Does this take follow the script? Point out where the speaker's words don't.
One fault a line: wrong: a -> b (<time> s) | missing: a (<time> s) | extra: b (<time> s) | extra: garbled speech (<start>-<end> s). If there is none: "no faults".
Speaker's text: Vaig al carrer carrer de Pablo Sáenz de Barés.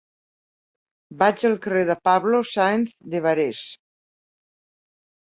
missing: carrer (1.8 s)